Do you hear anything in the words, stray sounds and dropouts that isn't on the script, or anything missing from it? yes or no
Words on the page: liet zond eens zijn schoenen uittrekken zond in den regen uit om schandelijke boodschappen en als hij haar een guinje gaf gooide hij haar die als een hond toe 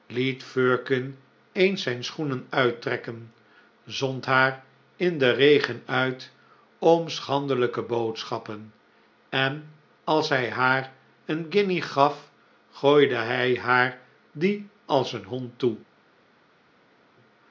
yes